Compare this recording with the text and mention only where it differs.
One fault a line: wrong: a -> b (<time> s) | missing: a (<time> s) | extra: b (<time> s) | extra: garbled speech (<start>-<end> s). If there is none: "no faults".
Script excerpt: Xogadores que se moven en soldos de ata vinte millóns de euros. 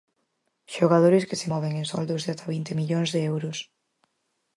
no faults